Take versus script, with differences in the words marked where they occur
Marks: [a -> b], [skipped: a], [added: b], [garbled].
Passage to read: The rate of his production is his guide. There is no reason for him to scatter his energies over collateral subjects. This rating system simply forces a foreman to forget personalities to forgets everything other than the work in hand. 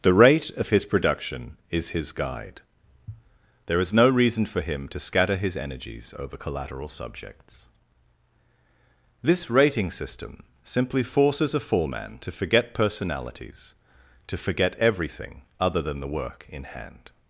The rate of his production is his guide. There is no reason for him to scatter his energies over collateral subjects. This rating system simply forces a foreman to forget personalities to [forgets -> forget] everything other than the work in hand.